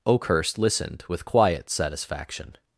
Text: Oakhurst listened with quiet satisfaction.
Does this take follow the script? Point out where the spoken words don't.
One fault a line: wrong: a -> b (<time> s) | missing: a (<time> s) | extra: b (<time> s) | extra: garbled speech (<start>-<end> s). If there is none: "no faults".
no faults